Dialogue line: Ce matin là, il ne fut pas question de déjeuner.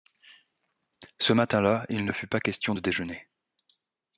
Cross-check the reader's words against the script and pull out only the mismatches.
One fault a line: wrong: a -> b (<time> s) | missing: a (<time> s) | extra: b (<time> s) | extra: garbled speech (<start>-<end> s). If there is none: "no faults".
no faults